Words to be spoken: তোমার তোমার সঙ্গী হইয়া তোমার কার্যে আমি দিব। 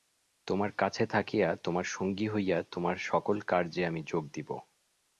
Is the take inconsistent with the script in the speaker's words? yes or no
yes